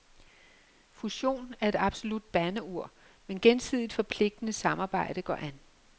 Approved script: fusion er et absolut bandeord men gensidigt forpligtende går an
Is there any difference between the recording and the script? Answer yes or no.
yes